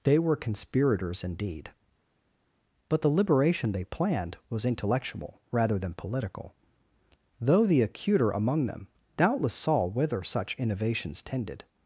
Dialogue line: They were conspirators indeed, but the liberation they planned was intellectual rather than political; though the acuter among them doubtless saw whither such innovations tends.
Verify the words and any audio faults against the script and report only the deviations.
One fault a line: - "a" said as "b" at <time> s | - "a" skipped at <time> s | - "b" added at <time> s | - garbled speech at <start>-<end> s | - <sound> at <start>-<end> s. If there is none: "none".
- "tends" said as "tended" at 11.2 s